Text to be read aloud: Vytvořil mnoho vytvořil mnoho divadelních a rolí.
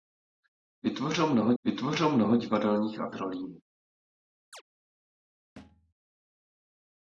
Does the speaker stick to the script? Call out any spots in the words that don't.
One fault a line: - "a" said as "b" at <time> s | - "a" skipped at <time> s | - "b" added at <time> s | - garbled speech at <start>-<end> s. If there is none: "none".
none